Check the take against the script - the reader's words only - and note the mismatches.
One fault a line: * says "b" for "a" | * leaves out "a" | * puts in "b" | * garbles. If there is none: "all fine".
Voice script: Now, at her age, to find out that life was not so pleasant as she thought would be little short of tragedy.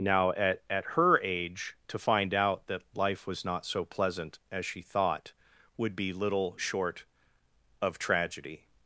* puts in "at"